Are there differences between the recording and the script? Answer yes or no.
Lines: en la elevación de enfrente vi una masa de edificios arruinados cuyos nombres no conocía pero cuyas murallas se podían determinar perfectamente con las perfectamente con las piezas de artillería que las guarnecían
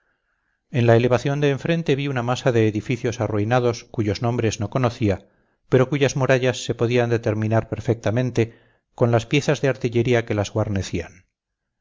yes